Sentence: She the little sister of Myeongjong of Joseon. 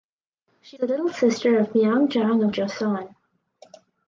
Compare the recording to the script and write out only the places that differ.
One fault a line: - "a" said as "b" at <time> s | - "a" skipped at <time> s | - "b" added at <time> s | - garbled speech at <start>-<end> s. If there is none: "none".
none